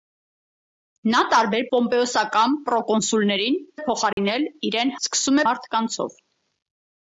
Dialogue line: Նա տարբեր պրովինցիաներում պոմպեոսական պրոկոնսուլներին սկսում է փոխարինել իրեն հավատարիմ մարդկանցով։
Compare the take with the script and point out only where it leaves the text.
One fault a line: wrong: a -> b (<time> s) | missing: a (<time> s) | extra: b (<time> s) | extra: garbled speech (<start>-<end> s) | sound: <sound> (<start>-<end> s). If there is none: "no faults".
missing: պրովինցիաներում (1.6 s)
missing: սկսում (3.6 s)
sound: dropout (4.1-4.2 s)
wrong: հավատարիմ -> սկսում (5.1 s)